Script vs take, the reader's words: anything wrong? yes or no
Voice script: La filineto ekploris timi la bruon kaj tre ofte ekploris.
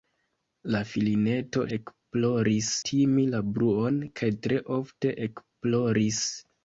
no